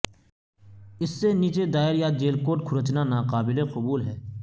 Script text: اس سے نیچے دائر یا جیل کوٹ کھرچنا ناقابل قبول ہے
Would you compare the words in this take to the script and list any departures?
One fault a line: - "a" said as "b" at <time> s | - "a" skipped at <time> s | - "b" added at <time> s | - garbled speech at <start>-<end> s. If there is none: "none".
none